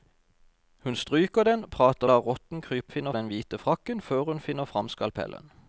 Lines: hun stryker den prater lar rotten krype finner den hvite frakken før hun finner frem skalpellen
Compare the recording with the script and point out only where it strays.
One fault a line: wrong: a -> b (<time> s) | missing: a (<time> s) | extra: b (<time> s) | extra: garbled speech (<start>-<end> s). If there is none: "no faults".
no faults